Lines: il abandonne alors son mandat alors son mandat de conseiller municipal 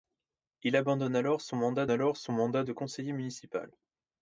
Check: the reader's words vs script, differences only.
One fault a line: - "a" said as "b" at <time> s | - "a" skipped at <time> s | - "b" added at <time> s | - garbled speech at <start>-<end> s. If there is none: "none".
none